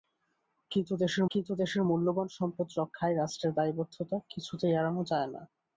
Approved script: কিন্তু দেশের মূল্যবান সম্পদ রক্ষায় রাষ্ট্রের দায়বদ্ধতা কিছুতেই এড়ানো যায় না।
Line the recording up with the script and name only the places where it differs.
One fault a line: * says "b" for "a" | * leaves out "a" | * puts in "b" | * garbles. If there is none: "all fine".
* puts in "কিন্তু দেশের"